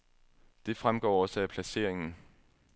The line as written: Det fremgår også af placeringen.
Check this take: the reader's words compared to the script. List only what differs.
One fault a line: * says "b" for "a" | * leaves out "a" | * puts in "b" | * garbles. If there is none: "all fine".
all fine